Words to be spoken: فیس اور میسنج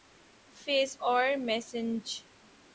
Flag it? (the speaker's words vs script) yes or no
no